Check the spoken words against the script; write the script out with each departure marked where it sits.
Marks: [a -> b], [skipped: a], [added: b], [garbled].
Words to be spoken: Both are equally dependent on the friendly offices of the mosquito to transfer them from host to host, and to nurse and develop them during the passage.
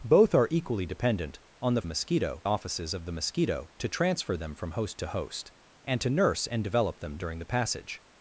Both are equally dependent on the [friendly -> mosquito] offices of the mosquito to transfer them from host to host, and to nurse and develop them during the passage.